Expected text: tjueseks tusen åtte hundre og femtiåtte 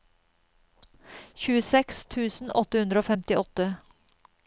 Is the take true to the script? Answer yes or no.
yes